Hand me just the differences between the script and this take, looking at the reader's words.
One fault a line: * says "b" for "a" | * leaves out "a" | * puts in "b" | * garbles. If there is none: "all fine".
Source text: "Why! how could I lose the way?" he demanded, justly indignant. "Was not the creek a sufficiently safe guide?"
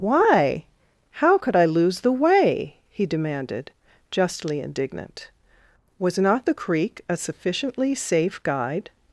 all fine